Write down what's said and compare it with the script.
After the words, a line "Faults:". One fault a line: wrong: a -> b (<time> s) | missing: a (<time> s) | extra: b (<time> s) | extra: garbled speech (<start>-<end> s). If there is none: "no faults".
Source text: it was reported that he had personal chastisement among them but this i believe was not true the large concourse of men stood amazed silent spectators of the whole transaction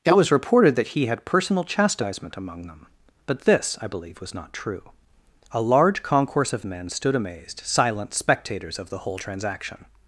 it was reported that he had personal chastisement among them but this i believe was not true a large concourse of men stood amazed silent spectators of the whole transaction
Faults:
wrong: the -> a (5.5 s)